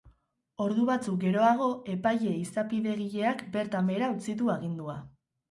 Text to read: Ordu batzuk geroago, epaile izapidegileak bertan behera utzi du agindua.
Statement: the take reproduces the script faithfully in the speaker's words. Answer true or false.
true